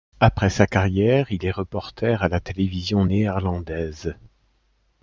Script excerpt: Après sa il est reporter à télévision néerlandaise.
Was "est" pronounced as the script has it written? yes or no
yes